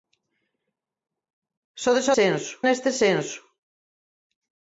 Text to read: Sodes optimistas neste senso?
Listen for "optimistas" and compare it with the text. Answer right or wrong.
wrong